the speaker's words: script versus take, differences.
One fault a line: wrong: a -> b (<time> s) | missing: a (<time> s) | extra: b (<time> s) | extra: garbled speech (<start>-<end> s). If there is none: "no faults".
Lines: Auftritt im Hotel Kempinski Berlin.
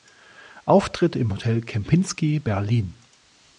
no faults